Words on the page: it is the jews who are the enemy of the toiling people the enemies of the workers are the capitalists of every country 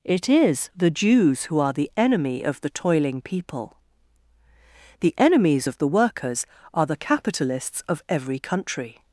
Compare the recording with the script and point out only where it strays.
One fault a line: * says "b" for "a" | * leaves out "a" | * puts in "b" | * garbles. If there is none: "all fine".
all fine